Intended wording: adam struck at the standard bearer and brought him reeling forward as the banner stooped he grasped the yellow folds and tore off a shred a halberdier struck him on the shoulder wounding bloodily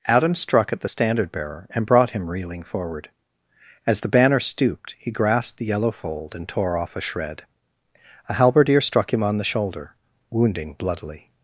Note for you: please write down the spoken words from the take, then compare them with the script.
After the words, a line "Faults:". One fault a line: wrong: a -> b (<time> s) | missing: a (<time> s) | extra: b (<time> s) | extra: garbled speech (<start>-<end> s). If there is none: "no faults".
adam struck at the standard bearer and brought him reeling forward as the banner stooped he grasped the yellow fold and tore off a shred a halberdier struck him on the shoulder wounding bloodily
Faults:
wrong: folds -> fold (5.9 s)